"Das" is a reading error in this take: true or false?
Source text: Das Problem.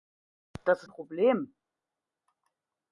false